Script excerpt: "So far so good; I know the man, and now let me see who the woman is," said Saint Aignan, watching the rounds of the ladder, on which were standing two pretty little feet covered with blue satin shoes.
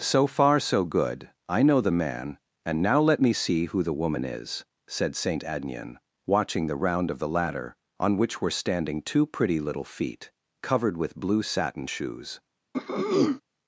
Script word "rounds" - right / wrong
wrong